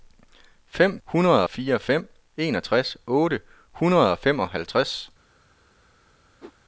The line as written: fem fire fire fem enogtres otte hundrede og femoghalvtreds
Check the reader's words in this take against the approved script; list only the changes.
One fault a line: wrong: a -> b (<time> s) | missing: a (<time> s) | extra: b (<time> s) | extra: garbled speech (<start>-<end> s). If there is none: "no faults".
wrong: fire -> hundrede (1.0 s)